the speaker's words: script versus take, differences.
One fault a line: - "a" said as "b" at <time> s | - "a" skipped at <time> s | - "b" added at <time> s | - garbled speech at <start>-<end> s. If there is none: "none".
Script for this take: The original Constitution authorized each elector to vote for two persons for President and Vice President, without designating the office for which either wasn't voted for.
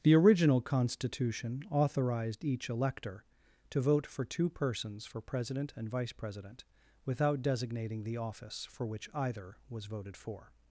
- "wasn't" said as "was" at 9.7 s